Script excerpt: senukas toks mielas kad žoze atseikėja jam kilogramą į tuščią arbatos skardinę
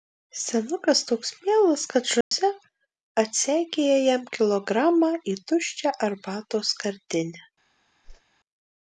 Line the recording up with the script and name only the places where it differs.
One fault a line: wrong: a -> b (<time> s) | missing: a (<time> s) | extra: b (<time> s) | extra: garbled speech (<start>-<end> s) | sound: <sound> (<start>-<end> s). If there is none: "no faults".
sound: dropout (2.2-2.3 s)
sound: whoosh (8.0-8.2 s)